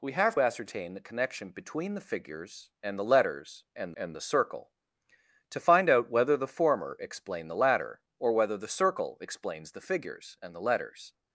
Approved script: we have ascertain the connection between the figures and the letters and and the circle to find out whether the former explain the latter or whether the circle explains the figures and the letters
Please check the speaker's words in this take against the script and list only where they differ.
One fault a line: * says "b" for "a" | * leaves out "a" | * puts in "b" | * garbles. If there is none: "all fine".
all fine